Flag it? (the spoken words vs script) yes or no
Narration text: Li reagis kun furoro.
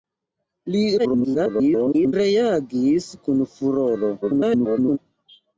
yes